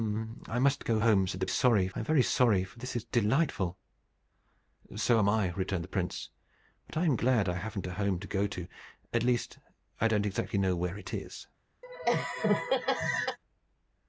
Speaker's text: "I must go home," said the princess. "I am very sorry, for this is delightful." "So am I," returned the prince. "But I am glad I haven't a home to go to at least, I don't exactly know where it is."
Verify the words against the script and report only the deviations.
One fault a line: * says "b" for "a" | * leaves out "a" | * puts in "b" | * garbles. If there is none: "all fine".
* says "sorry" for "princess"